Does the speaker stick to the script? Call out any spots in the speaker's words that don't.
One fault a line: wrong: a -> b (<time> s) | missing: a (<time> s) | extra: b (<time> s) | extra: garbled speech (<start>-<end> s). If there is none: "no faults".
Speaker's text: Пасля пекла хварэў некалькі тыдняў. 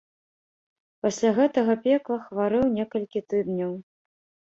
extra: гэтага (1.4 s)